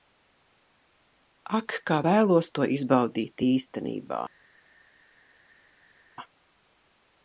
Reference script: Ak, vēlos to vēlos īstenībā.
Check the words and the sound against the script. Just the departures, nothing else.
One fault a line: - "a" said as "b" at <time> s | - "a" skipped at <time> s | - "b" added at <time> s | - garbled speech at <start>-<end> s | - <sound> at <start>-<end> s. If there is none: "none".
- "kā" added at 1.9 s
- "vēlos" said as "izbaudīt" at 2.7 s